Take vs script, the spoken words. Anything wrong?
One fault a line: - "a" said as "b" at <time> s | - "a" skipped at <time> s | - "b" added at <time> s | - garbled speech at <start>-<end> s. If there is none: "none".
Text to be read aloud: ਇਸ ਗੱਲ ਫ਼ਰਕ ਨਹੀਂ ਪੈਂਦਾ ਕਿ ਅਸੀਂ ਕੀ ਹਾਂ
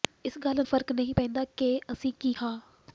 none